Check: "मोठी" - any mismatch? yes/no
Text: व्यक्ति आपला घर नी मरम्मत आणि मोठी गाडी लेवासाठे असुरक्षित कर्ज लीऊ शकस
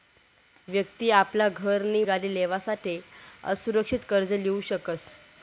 yes